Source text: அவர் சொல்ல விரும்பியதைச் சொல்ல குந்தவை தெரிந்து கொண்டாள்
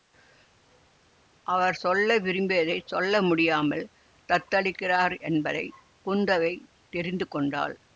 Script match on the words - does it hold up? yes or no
no